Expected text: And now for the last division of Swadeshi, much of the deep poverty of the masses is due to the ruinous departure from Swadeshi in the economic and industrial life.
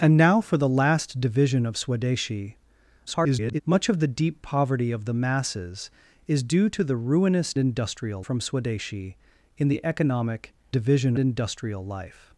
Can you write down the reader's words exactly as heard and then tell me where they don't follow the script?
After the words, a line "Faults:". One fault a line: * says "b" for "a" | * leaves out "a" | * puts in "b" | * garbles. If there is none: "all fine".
And now for the last division of Swadeshi, [garbled] much of the deep poverty of the masses is due to the ruinous industrial from Swadeshi in the economic division industrial life.
Faults:
* garbles
* says "industrial" for "departure"
* says "division" for "and"